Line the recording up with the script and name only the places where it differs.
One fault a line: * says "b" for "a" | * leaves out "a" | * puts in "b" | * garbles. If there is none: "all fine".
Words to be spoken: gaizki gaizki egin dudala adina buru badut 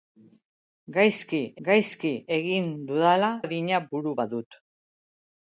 all fine